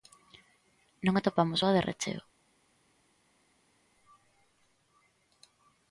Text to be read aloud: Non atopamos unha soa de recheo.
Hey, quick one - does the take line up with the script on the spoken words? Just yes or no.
no